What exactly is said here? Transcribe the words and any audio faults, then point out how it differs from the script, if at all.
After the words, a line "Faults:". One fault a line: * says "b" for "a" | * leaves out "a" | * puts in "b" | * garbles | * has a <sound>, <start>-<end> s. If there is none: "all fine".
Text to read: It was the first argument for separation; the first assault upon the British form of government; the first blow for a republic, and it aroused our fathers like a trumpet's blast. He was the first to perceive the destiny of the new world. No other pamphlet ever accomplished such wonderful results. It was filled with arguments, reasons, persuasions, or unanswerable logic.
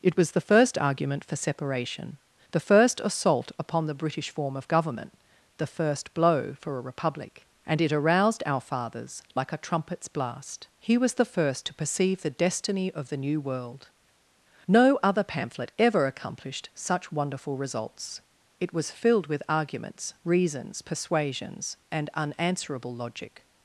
It was the first argument for separation; the first assault upon the British form of government; the first blow for a republic, and it aroused our fathers like a trumpet's blast. He was the first to perceive the destiny of the new world. No other pamphlet ever accomplished such wonderful results. It was filled with arguments, reasons, persuasions, and unanswerable logic.
Faults:
* says "and" for "or"